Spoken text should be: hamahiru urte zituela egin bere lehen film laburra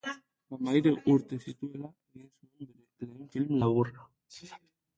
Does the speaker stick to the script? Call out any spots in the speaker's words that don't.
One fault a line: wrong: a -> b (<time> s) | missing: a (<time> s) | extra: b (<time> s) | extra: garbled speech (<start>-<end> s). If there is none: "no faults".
extra: zuen (2.3 s)